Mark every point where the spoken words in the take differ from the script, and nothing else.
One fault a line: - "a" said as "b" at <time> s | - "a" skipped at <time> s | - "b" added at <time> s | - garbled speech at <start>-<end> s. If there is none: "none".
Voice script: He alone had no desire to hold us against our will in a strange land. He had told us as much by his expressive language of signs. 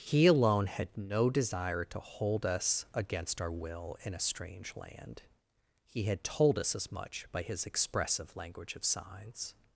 none